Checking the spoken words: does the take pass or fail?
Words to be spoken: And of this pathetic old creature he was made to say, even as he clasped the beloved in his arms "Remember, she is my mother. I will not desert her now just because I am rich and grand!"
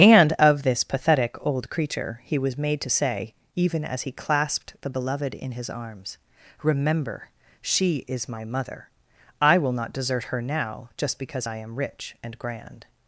pass